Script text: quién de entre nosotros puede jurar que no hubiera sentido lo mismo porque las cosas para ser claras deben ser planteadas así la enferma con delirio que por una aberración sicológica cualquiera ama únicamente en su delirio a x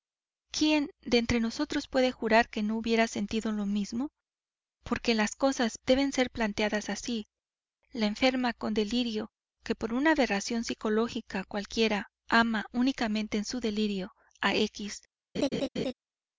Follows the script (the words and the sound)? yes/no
no